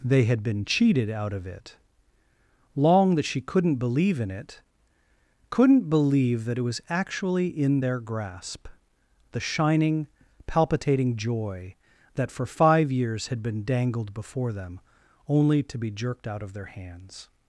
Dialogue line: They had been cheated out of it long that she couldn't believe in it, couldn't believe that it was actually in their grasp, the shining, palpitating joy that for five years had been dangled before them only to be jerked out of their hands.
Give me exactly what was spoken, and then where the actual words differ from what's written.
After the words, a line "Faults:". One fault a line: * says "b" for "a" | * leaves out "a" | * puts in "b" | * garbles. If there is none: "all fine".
They had been cheated out of it long that she couldn't believe in it, couldn't believe that it was actually in their grasp, the shining, palpitating joy that for five years had been dangled before them only to be jerked out of their hands.
Faults:
all fine